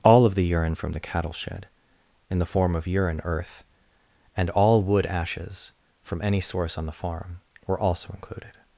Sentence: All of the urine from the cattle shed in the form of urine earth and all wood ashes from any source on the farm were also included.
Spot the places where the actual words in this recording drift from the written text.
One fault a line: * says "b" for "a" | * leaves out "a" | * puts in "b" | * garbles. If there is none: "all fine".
all fine